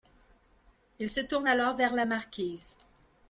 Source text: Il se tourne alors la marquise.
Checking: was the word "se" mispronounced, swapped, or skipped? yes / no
no